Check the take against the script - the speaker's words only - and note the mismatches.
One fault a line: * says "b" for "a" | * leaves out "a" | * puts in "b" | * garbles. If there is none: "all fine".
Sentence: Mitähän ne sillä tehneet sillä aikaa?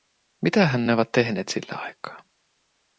* says "ovat" for "sillä"